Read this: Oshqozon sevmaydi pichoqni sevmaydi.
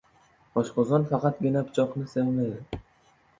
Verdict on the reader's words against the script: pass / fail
fail